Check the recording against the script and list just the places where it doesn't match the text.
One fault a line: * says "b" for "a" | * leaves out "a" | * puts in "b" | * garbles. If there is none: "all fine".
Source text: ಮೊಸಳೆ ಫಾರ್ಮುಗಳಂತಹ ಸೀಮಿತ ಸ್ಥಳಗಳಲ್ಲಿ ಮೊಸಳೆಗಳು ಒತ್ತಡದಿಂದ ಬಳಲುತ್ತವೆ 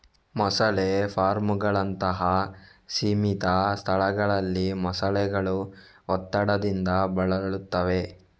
all fine